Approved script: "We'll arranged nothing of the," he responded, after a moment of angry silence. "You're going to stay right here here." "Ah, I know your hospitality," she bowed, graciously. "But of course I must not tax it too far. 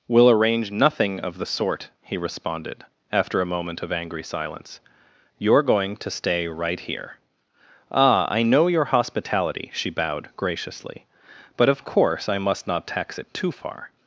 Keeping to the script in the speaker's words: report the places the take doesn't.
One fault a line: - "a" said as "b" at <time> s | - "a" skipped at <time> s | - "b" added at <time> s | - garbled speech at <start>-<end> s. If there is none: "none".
- "arranged" said as "arrange" at 0.3 s
- "sort" added at 1.4 s
- "here" skipped at 7.2 s